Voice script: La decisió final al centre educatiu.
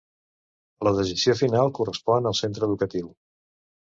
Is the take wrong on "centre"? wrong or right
right